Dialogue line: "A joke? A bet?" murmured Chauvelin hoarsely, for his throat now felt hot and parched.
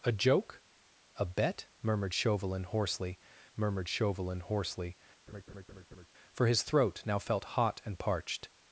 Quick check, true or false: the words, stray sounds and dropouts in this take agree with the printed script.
false